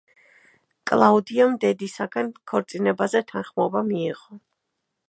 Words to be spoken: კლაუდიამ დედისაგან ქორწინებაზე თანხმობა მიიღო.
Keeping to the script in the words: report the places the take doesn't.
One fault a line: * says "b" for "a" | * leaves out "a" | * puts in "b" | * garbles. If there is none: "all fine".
all fine